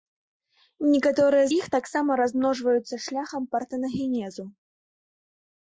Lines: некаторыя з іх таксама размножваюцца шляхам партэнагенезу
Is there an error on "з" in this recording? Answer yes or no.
yes